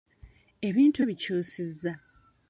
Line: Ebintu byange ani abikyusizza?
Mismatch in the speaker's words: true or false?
true